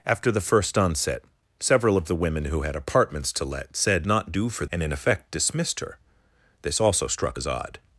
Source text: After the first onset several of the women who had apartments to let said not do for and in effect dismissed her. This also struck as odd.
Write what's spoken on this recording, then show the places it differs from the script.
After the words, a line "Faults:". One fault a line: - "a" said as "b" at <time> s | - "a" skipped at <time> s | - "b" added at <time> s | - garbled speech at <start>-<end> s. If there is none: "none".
After the first onset several of the women who had apartments to let said not do for and in effect dismissed her. This also struck as odd.
Faults:
none